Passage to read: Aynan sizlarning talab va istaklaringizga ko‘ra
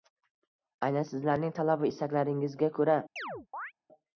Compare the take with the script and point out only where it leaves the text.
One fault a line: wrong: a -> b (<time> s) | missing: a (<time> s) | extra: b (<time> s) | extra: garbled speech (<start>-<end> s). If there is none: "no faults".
no faults